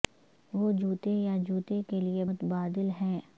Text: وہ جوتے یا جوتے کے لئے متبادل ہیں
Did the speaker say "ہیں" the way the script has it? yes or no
yes